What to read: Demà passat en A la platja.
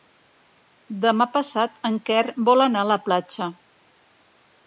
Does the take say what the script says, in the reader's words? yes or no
no